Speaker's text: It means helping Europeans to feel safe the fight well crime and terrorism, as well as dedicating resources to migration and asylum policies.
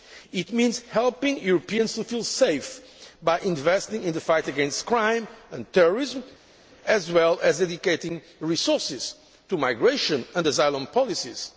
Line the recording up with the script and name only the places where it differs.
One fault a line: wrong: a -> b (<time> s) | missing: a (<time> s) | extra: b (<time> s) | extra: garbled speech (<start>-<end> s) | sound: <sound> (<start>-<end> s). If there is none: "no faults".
extra: by investing in (3.2 s)
wrong: well -> against (4.5 s)